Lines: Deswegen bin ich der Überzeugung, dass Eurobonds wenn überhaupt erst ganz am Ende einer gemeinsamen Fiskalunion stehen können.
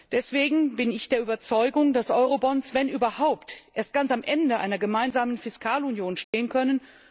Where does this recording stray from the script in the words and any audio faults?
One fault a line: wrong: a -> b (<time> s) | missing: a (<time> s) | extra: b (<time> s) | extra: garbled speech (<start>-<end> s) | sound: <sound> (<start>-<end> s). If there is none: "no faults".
sound: dropout (6.2-6.3 s)